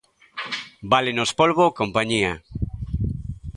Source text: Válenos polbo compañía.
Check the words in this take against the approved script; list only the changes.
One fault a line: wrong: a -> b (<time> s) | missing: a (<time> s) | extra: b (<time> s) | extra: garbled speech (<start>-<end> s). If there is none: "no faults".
no faults